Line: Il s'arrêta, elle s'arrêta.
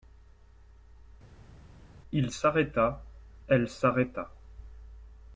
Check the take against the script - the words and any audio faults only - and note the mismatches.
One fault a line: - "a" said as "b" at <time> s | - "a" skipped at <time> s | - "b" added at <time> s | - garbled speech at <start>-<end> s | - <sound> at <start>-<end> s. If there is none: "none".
none